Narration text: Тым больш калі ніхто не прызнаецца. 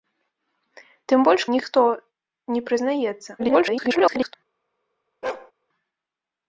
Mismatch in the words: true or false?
true